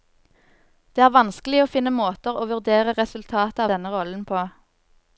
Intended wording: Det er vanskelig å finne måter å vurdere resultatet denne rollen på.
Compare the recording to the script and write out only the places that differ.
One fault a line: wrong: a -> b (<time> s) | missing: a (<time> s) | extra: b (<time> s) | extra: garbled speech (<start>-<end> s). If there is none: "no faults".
no faults